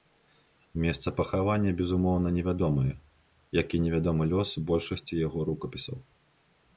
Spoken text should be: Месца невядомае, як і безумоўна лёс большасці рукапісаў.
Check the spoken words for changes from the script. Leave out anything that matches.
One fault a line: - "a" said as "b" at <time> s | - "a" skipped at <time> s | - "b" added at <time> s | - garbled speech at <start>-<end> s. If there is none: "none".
- "пахавання безумоўна" added at 1.2 s
- "безумоўна" said as "невядомы" at 3.8 s
- "яго" added at 5.3 s